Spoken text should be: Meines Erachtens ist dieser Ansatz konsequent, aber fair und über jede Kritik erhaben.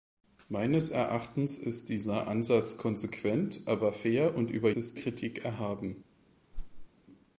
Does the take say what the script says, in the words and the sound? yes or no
no